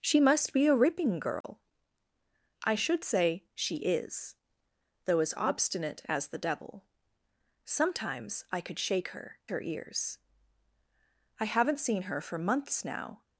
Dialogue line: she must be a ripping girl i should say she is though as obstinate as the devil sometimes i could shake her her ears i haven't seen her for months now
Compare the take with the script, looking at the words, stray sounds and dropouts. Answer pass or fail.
fail